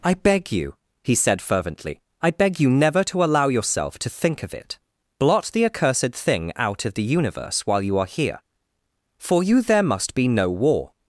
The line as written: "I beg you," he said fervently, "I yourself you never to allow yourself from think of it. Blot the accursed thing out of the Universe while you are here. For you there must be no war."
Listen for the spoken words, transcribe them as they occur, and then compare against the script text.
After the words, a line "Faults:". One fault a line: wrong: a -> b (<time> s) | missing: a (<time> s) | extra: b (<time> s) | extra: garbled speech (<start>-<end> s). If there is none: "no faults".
"I beg you," he said fervently, "I beg you never to allow yourself to think of it. Blot the accursed thing out of the Universe while you are here. For you there must be no war."
Faults:
wrong: yourself -> beg (2.3 s)
wrong: from -> to (4.0 s)